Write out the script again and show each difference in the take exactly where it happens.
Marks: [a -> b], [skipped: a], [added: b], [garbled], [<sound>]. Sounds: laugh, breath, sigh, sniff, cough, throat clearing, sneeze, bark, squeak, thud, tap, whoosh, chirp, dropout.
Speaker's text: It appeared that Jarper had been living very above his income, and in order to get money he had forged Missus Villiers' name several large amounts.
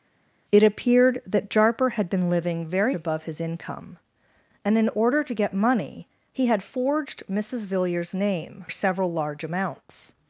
It appeared that Jarper had been living very above his income, and in order to get money he had forged Missus Villiers' name several large amounts.